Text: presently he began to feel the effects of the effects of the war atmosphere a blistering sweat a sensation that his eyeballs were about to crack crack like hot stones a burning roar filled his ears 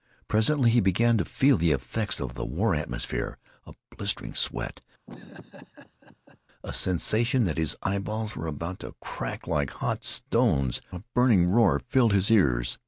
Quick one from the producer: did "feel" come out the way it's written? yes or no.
yes